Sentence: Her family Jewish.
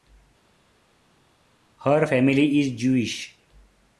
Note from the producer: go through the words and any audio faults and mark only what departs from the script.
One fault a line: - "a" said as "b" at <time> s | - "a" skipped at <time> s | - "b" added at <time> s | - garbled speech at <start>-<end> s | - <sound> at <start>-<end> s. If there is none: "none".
- "is" added at 2.6 s